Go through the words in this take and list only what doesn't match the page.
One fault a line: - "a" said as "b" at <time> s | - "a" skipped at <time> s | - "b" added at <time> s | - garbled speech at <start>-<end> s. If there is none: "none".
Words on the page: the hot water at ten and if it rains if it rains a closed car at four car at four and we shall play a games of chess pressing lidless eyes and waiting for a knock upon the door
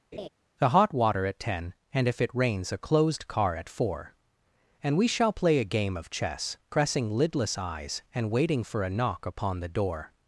- "if it rains" skipped at 2.7 s
- "car at four" skipped at 4.1 s
- "games" said as "game" at 5.6 s